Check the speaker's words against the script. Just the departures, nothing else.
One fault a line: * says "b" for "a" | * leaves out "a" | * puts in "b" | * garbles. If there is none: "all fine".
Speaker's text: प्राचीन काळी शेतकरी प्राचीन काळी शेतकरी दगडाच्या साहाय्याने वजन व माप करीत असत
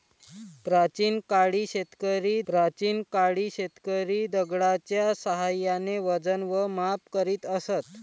all fine